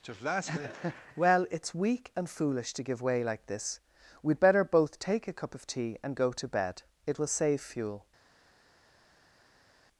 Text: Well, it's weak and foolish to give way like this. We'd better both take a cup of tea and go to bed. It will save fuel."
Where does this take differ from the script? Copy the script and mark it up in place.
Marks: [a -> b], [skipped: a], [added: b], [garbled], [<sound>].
[added: just last minute] Well, it's weak and foolish to give way like this. We'd better both take a cup of tea and go to bed. It will save fuel."